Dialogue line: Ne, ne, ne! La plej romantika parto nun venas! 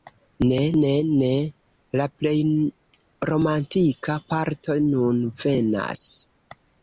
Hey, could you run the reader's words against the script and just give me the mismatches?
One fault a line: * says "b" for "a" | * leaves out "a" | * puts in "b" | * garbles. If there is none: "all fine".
all fine